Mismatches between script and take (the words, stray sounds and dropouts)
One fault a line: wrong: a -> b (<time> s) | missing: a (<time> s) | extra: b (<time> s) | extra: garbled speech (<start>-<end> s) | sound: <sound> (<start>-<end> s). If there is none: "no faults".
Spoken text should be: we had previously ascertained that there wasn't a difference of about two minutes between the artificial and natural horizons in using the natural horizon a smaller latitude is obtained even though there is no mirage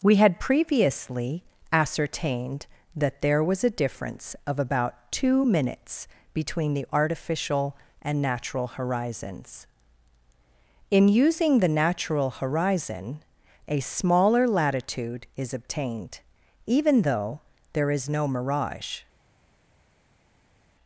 wrong: wasn't -> was (3.4 s)